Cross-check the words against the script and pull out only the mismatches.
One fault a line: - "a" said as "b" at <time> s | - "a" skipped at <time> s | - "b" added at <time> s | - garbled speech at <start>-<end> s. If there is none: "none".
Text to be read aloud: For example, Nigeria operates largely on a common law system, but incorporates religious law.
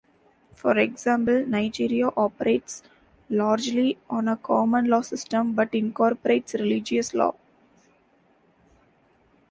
none